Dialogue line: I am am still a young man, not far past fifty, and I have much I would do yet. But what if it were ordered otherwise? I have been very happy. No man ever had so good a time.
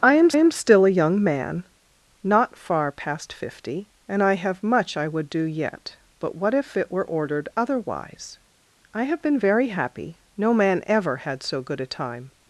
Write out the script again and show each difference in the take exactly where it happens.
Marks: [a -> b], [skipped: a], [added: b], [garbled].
I am am still a young man, not far past fifty, and I have much I would do yet. But what if it were ordered otherwise? I have been very happy. No man ever had so good a time.